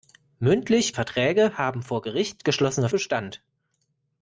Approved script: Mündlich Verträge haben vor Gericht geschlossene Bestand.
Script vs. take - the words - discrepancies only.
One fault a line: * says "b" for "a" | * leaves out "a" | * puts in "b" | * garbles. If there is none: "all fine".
all fine